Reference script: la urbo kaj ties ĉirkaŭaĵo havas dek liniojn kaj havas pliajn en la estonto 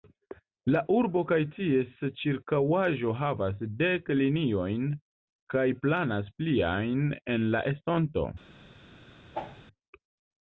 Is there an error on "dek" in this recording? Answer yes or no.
no